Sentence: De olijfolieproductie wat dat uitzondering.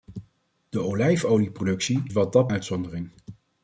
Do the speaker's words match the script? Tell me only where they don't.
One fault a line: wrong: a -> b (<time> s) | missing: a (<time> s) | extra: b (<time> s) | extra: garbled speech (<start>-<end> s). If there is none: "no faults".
no faults